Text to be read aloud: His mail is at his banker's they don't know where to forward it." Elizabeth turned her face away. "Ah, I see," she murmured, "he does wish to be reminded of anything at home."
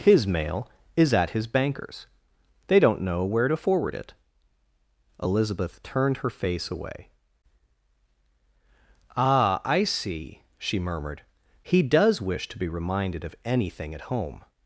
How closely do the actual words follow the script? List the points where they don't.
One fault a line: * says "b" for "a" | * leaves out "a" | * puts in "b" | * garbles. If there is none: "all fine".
all fine